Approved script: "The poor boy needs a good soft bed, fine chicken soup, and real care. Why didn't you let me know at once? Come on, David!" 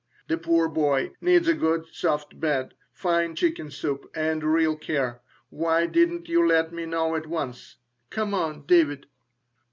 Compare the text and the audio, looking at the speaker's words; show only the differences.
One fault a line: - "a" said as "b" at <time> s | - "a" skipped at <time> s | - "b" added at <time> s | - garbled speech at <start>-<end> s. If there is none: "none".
none